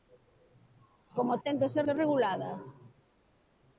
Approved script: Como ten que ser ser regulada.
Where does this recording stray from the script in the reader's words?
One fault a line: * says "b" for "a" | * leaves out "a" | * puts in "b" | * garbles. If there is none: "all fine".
all fine